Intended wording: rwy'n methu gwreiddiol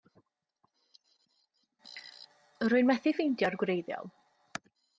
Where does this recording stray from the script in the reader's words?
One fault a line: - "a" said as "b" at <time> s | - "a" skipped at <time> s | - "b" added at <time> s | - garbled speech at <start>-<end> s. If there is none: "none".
- "ffeindio'r" added at 3.2 s